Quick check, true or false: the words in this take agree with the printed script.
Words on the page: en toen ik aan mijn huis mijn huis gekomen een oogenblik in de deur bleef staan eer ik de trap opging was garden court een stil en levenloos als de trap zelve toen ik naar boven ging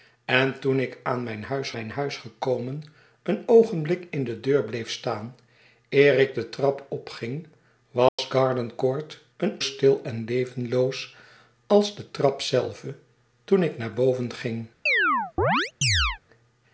true